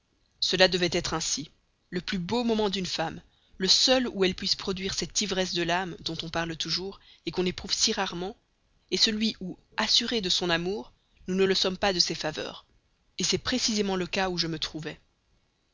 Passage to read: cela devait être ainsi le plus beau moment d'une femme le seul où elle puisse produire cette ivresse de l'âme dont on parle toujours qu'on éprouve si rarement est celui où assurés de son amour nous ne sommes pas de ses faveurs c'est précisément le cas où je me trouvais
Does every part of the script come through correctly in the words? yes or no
no